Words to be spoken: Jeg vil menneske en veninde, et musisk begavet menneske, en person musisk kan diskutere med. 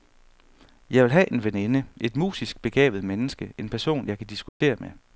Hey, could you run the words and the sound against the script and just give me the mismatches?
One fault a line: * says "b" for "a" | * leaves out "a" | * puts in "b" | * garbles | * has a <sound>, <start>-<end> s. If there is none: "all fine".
* says "have" for "menneske"
* says "jeg" for "musisk"
* has a dropout, 4.5-4.6 s